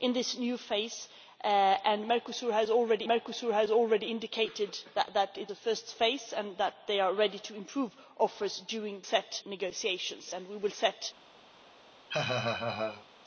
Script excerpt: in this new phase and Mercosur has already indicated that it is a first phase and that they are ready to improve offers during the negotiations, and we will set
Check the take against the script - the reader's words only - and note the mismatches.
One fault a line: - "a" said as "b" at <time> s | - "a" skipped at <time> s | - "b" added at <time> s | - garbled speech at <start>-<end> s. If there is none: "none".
- "Mercosur has already" added at 3.1 s
- "is" skipped at 5.5 s
- "the" said as "set" at 9.0 s